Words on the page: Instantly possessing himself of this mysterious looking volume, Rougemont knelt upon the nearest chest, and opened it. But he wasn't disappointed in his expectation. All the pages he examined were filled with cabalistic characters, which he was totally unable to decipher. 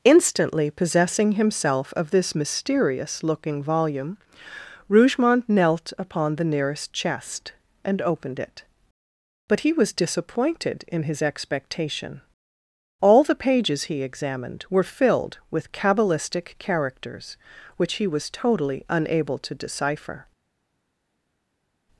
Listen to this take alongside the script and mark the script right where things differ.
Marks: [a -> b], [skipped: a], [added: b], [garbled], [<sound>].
Instantly possessing himself of this mysterious looking volume, Rougemont knelt upon the nearest chest, and opened it. But he [wasn't -> was] disappointed in his expectation. All the pages he examined were filled with cabalistic characters, which he was totally unable to decipher.